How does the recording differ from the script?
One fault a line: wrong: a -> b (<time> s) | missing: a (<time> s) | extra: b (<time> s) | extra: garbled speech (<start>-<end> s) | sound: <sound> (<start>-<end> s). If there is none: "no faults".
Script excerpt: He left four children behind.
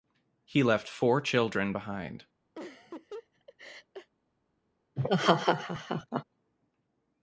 sound: laugh (2.6-4.1 s)
sound: laugh (5.0-6.2 s)